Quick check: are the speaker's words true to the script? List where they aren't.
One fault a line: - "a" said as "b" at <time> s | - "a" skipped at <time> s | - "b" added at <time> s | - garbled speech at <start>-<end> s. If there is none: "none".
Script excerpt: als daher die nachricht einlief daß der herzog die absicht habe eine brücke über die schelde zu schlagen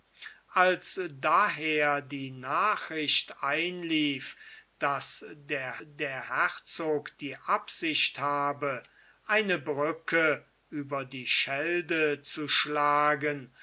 - "der" added at 5.9 s